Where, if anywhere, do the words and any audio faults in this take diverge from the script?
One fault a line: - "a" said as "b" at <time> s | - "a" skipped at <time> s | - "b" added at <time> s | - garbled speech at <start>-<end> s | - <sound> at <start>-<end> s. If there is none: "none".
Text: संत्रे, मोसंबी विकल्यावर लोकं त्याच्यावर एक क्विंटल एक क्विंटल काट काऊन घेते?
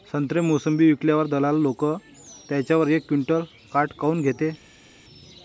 - "दलाल" added at 1.3 s
- "एक क्विंटल" skipped at 3.4 s